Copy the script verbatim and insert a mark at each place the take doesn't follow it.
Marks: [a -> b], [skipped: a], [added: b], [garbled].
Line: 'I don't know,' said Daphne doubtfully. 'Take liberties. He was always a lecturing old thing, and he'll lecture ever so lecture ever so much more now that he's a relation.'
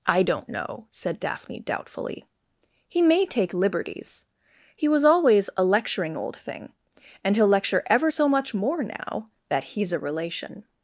'I don't know,' said Daphne doubtfully. [added: He may] 'Take liberties. He was always a lecturing old thing, and he'll lecture ever so [skipped: lecture ever so] much more now that he's a relation.'